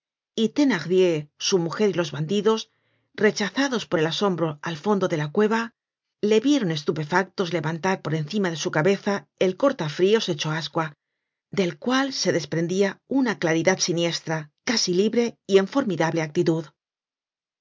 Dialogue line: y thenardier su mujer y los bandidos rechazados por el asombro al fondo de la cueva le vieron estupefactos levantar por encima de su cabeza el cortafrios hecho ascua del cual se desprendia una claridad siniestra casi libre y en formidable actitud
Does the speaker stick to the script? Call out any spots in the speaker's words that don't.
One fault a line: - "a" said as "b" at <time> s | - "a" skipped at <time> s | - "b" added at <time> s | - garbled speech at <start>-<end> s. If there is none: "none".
none